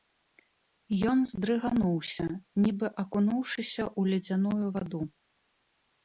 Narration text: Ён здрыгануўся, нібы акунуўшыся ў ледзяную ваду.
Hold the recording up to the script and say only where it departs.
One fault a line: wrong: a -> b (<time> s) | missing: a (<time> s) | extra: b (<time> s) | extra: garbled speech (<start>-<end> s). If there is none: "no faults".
no faults